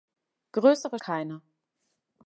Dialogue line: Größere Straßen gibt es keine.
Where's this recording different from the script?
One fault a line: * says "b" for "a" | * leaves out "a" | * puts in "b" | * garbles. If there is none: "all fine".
* leaves out "Straßen gibt es"